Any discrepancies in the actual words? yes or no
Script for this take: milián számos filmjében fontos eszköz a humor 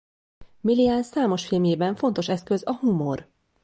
no